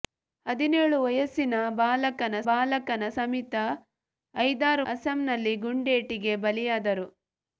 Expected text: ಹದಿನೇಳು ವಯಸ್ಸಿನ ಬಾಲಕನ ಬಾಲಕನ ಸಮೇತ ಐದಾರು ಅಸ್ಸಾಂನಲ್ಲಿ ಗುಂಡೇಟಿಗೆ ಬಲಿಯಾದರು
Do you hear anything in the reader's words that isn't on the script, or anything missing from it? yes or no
no